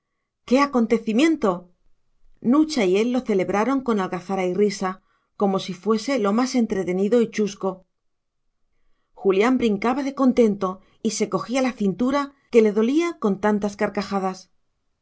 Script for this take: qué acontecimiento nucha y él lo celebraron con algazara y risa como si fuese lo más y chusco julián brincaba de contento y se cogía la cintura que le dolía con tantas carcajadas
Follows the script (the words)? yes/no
no